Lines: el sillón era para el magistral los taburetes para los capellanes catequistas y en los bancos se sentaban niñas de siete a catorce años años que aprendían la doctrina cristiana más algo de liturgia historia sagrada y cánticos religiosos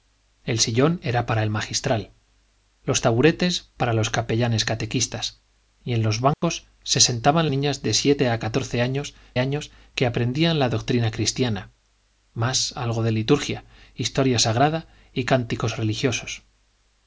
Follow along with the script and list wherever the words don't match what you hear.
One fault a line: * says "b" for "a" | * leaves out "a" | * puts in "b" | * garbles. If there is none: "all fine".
all fine